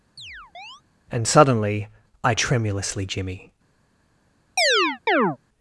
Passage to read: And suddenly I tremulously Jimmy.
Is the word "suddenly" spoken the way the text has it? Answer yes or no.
yes